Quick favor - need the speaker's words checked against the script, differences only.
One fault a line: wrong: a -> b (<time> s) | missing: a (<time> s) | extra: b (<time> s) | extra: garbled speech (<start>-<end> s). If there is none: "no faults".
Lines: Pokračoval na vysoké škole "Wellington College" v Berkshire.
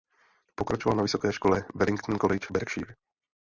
missing: v (2.5 s)